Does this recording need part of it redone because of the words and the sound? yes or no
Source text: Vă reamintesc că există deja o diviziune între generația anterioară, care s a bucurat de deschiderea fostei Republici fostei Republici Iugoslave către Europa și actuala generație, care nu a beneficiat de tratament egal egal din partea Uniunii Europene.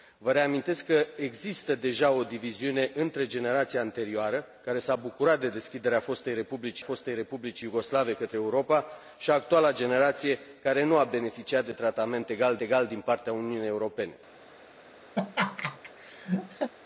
yes